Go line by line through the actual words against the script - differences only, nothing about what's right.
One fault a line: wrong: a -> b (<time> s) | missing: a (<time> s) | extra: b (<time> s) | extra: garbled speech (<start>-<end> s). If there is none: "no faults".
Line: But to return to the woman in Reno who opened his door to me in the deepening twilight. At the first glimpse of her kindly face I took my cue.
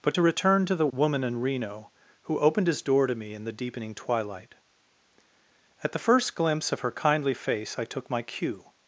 no faults